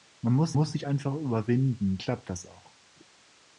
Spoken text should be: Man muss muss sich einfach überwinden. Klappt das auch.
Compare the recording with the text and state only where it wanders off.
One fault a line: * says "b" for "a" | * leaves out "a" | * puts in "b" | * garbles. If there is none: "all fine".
all fine